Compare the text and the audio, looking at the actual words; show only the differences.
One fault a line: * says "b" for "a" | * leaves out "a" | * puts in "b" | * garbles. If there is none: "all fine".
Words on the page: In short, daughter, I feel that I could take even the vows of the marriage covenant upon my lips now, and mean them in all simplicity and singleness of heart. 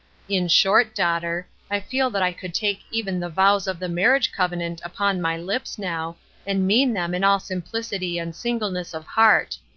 all fine